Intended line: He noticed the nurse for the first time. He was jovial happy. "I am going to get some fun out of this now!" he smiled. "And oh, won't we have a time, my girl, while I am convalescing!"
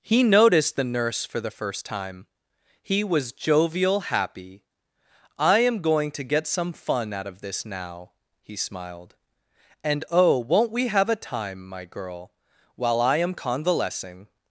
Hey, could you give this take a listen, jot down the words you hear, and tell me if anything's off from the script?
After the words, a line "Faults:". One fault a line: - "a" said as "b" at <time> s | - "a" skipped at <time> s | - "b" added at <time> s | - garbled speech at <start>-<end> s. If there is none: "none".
He noticed the nurse for the first time. He was jovial happy. "I am going to get some fun out of this now!" he smiled. "And oh, won't we have a time, my girl, while I am convalescing!"
Faults:
none